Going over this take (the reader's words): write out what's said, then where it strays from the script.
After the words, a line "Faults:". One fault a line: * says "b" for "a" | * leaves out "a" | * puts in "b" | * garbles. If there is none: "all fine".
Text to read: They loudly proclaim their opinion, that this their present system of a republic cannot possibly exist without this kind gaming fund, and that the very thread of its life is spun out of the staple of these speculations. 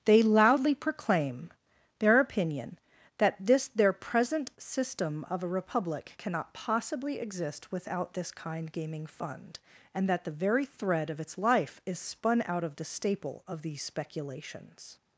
They loudly proclaim their opinion, that this their present system of a republic cannot possibly exist without this kind gaming fund, and that the very thread of its life is spun out of the staple of these speculations.
Faults:
all fine